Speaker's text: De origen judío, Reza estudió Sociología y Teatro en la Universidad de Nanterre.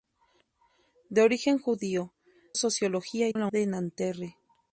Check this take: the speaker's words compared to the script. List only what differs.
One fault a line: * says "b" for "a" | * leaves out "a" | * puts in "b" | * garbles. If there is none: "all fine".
* leaves out "Reza estudió"
* leaves out "Teatro"
* leaves out "Universidad"